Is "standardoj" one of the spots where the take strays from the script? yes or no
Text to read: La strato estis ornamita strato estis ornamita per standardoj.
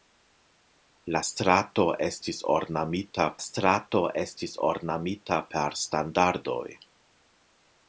no